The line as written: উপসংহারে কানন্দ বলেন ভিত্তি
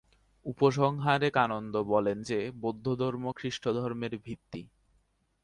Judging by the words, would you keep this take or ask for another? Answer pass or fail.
fail